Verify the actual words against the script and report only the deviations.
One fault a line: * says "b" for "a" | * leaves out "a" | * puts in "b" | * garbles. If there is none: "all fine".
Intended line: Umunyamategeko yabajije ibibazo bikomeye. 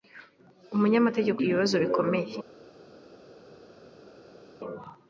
* leaves out "yabajije"